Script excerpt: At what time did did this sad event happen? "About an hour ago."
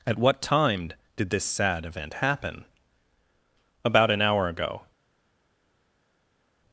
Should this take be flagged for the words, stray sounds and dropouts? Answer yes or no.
yes